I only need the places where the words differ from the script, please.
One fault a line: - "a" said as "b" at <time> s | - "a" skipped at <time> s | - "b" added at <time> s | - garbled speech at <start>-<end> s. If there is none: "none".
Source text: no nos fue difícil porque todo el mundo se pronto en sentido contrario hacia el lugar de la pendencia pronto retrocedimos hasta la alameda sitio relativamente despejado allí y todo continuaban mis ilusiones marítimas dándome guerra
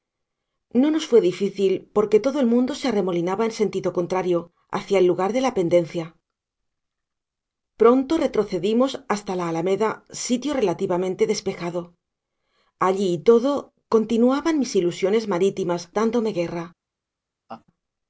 - "pronto" said as "arremolinaba" at 2.9 s